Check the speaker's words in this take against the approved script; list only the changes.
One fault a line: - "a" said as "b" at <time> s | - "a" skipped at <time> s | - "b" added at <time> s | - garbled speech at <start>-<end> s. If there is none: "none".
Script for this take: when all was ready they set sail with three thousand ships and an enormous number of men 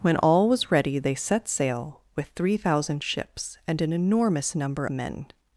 - "of" skipped at 4.9 s